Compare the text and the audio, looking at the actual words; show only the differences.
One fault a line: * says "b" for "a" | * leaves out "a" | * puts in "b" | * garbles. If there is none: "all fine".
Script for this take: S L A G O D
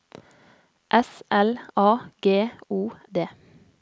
all fine